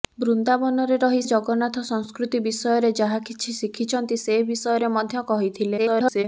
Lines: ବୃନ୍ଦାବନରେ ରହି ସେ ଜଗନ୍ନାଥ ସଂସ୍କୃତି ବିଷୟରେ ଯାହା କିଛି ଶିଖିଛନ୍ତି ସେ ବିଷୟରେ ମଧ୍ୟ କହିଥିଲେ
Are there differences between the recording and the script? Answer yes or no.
yes